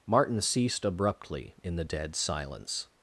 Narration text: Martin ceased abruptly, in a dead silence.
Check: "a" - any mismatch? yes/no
yes